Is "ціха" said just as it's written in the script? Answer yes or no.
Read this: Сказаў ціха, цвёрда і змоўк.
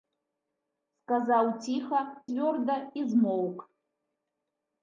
yes